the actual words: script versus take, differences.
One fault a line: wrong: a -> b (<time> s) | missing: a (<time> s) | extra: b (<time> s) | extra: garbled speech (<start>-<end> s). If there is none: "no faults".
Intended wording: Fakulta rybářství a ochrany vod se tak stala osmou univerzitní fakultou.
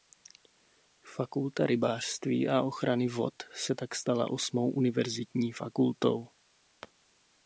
no faults